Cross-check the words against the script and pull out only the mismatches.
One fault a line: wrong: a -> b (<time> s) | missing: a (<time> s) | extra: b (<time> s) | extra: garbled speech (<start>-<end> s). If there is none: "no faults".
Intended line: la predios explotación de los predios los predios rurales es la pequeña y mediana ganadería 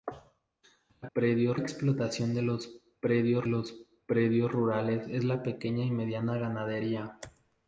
no faults